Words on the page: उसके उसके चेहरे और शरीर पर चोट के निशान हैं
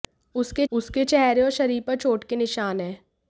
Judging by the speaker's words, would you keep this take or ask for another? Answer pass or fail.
pass